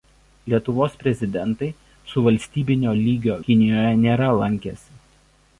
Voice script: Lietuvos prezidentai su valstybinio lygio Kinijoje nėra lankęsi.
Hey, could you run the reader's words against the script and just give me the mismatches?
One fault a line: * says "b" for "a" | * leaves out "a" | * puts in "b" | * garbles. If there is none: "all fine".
all fine